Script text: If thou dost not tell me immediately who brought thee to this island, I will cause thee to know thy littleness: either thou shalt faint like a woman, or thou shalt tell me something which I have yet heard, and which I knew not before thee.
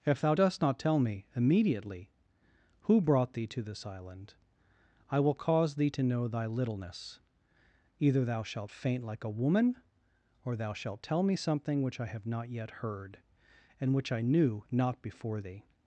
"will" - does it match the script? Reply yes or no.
yes